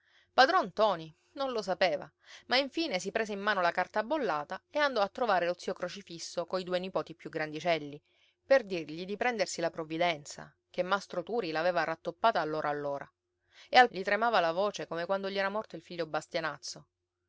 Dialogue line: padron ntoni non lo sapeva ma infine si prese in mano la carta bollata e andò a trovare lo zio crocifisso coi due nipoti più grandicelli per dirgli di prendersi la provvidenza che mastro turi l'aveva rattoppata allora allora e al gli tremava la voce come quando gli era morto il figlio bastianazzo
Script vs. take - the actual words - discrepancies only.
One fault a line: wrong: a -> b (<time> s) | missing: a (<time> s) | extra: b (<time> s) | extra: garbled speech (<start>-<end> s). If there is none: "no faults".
no faults